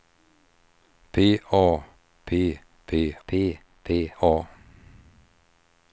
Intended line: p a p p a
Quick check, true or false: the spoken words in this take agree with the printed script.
false